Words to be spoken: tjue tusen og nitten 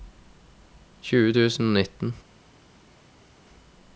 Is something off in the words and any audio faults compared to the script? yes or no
no